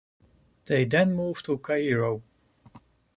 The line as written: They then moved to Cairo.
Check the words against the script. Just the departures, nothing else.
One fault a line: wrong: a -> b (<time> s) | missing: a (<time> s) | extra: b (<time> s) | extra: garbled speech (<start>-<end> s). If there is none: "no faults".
no faults